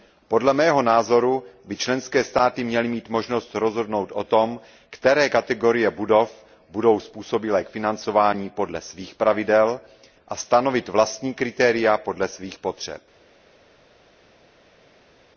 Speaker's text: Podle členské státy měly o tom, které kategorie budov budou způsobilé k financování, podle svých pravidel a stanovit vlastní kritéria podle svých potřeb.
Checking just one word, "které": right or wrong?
right